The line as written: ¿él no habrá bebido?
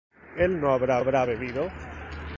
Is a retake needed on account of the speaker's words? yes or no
yes